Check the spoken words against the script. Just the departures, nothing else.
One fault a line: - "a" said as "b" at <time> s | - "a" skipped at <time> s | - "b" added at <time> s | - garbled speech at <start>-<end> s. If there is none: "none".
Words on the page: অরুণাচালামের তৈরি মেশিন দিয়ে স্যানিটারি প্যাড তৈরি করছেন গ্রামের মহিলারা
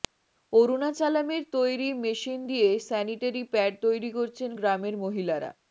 none